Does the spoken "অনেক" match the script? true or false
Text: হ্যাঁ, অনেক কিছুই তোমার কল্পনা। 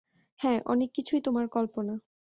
true